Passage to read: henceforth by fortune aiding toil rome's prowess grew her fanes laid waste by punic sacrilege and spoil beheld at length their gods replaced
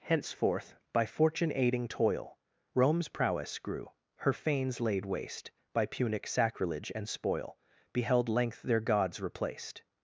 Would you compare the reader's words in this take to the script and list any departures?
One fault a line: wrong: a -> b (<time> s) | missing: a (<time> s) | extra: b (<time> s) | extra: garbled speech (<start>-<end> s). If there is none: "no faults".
missing: at (8.3 s)